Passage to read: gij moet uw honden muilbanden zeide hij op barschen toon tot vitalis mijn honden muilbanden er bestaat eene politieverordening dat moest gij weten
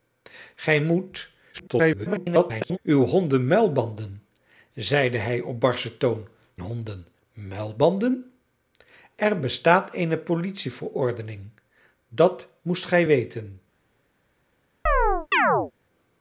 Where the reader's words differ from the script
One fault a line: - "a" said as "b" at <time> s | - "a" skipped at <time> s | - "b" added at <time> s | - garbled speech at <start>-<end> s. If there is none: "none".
- garbled speech at 1.5-2.8 s
- "tot vitalis mijn" skipped at 6.3 s